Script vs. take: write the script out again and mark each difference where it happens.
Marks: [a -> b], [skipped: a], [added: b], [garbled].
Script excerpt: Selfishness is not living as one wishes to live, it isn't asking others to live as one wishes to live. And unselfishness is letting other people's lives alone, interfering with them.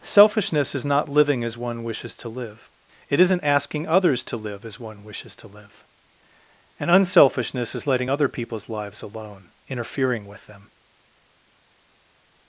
Selfishness is not living as one wishes to live, it isn't asking others to live as one wishes to live. And unselfishness is letting other people's lives alone, interfering with them.